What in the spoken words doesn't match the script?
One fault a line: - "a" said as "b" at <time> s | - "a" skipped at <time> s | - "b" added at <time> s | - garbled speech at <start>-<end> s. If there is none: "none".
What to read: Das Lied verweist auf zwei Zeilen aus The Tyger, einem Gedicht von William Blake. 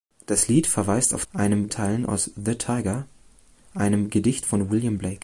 - "zwei" said as "einem" at 1.3 s